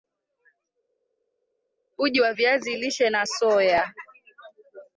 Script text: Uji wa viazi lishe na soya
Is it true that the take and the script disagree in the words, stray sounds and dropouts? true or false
false